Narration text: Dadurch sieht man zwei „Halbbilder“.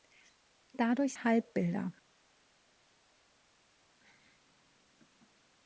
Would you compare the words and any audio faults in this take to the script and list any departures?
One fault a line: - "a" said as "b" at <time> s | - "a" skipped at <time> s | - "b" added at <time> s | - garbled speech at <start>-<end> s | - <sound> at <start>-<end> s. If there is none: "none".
- "sieht man zwei" skipped at 1.1 s